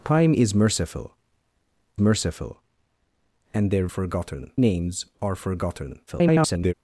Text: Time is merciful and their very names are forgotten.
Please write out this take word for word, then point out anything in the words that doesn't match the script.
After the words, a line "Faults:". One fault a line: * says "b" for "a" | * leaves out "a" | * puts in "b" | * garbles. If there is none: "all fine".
Time is merciful merciful and their forgotten names are forgotten. [garbled]
Faults:
* puts in "merciful"
* says "forgotten" for "very"
* garbles